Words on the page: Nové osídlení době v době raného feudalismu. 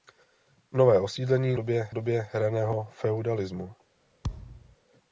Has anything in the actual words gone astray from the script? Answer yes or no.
no